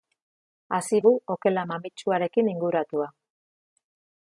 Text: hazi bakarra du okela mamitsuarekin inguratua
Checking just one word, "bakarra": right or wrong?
wrong